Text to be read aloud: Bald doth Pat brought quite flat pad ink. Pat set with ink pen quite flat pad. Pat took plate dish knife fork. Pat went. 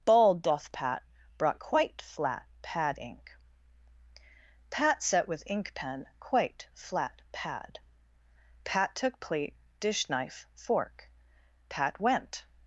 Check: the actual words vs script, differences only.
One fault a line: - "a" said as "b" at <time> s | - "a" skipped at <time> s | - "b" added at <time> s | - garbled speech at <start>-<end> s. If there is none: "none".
none